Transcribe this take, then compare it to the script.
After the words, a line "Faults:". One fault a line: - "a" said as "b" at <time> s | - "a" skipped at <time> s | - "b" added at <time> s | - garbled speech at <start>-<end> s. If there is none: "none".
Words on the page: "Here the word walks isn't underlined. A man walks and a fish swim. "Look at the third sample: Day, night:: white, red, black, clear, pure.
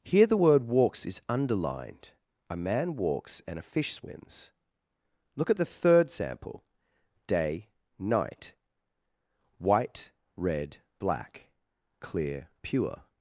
"Here the word walks is underlined. A man walks and a fish swims. "Look at the third sample: Day, night:: white, red, black, clear, pure.
Faults:
- "isn't" said as "is" at 1.1 s
- "swim" said as "swims" at 3.9 s